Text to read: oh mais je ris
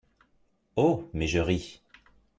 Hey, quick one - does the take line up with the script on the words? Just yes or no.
yes